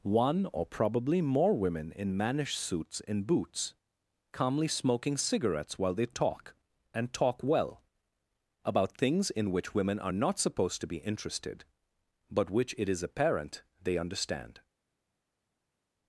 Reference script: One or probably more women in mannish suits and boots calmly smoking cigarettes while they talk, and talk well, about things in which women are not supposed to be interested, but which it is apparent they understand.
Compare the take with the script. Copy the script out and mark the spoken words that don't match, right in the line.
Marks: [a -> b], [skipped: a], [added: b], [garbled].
One or probably more women in mannish suits and boots calmly smoking cigarettes while they talk, and talk well, about things in which women are not supposed to be interested, but which it is apparent they understand.